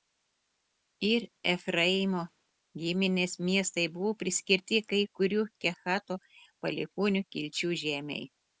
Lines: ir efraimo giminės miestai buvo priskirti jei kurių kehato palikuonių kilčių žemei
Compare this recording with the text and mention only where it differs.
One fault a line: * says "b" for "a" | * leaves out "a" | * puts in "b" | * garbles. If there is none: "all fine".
* says "kai" for "jei"